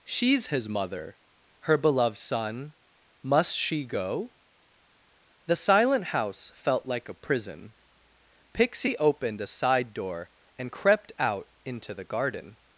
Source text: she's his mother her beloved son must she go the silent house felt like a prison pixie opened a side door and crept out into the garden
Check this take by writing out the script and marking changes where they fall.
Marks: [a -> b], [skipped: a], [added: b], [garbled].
she's his mother her beloved son must she go the silent house felt like a prison pixie opened a side door and crept out into the garden